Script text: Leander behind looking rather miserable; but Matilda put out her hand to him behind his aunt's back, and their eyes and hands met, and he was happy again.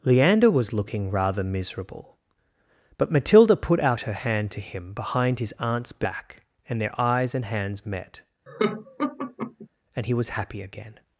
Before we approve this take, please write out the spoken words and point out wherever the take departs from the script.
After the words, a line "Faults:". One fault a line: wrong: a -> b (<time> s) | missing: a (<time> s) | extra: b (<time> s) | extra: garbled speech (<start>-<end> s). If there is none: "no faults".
Leander was looking rather miserable; but Matilda put out her hand to him behind his aunt's back, and their eyes and hands met, and he was happy again.
Faults:
wrong: behind -> was (0.5 s)